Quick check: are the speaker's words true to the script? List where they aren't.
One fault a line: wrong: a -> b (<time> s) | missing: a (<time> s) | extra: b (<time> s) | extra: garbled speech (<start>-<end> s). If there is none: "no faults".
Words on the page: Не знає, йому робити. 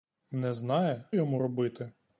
no faults